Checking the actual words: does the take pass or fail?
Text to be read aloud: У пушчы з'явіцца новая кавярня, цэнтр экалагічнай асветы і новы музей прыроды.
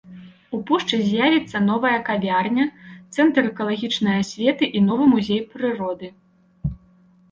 pass